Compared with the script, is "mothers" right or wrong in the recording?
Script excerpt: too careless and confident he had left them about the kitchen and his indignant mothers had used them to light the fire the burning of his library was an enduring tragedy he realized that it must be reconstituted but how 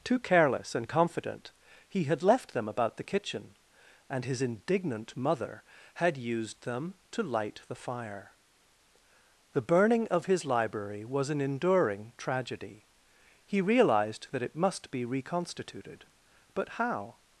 wrong